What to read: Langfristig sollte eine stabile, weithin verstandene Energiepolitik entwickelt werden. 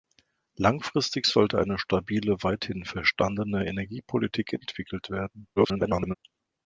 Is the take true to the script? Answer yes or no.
no